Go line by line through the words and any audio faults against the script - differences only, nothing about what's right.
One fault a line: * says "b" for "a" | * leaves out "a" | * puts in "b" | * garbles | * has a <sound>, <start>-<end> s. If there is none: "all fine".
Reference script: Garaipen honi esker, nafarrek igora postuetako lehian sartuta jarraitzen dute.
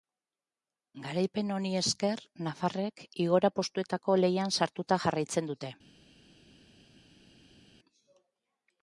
all fine